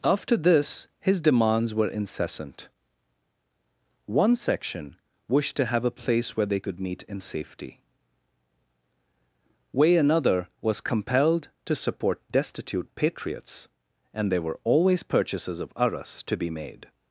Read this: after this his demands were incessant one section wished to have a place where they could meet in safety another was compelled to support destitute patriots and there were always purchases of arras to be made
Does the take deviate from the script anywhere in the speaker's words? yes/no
yes